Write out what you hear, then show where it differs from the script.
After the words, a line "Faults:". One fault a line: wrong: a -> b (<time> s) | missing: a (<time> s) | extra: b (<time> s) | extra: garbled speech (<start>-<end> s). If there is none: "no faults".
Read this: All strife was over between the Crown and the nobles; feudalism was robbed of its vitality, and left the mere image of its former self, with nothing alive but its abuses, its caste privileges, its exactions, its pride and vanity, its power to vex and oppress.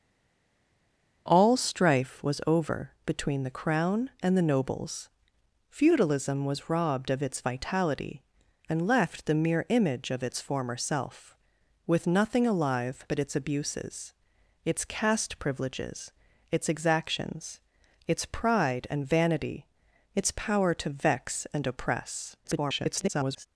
All strife was over between the Crown and the nobles; feudalism was robbed of its vitality, and left the mere image of its former self, with nothing alive but its abuses, its caste privileges, its exactions, its pride and vanity, its power to vex and oppress. [garbled]
Faults:
extra: garbled speech (22.4-23.5 s)